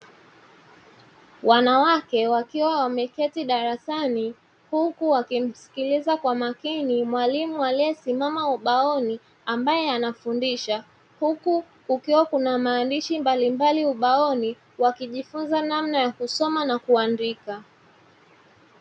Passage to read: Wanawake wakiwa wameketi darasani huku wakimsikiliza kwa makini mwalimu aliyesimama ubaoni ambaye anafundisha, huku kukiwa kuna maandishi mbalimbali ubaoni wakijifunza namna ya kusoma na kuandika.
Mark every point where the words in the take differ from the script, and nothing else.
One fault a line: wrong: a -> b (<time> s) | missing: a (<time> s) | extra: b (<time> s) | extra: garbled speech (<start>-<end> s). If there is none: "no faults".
no faults